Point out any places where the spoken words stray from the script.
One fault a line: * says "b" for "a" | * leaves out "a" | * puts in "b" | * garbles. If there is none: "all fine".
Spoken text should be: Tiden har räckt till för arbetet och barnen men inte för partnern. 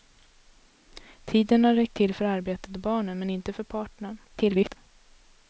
* garbles